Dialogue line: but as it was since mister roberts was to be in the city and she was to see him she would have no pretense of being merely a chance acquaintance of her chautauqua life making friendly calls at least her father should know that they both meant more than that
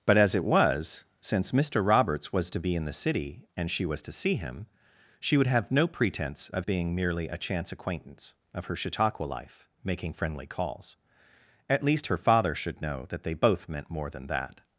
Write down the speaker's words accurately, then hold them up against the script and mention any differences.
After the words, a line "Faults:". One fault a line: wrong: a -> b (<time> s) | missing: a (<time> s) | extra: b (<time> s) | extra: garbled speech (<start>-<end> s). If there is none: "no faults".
but as it was since mister roberts was to be in the city and she was to see him she would have no pretense of being merely a chance acquaintance of her chautauqua life making friendly calls at least her father should know that they both meant more than that
Faults:
no faults